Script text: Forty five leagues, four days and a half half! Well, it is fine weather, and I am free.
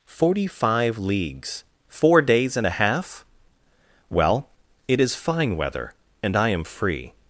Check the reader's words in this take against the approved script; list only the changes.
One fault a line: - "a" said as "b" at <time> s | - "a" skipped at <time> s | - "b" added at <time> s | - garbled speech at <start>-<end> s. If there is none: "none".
- "half" skipped at 3.3 s